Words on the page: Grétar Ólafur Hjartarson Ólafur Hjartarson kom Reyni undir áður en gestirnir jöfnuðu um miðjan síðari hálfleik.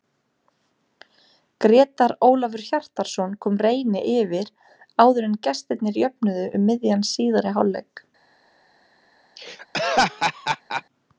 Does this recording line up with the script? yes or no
no